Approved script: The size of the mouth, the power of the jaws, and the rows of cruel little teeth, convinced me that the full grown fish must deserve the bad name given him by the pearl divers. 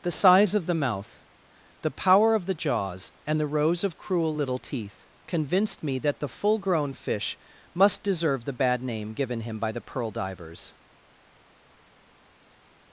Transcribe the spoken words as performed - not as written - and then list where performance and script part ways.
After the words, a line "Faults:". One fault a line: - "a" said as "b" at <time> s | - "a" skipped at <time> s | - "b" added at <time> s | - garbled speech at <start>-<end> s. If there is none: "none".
The size of the mouth, the power of the jaws, and the rows of cruel little teeth, convinced me that the full grown fish must deserve the bad name given him by the pearl divers.
Faults:
none